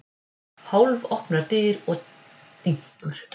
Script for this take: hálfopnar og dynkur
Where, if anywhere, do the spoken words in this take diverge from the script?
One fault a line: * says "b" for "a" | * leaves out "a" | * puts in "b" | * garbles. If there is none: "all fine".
* puts in "dyr"